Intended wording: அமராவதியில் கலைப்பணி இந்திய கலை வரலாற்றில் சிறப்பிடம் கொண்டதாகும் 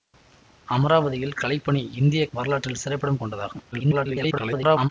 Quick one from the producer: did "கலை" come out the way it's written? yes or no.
no